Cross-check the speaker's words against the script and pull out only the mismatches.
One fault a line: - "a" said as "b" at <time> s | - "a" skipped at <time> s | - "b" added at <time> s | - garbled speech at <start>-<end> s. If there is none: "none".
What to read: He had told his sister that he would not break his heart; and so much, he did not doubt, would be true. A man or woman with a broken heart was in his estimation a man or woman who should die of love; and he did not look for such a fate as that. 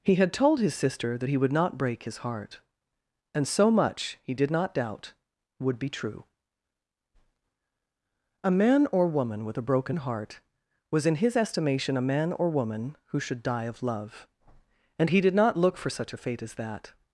none